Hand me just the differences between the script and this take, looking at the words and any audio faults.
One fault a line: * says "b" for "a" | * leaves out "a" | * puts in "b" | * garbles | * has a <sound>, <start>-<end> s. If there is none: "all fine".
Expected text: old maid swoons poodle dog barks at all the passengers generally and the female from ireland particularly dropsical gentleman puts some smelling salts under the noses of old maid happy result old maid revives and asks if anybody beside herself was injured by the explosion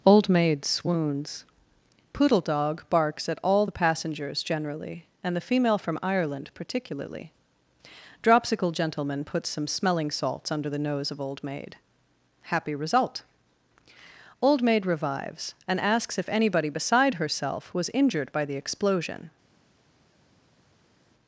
* says "nose" for "noses"